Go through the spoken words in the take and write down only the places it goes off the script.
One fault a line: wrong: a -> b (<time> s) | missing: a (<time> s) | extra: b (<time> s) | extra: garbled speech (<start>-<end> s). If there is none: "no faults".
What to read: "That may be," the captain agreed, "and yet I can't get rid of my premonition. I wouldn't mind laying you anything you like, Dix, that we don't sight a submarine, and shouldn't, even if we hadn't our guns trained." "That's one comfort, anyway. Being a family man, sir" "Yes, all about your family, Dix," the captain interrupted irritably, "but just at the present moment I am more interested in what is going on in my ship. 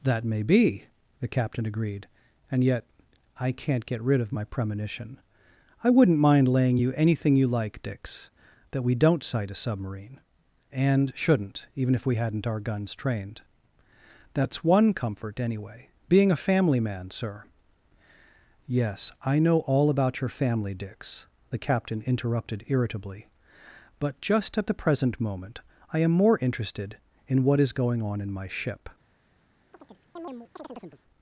extra: I know (19.2 s)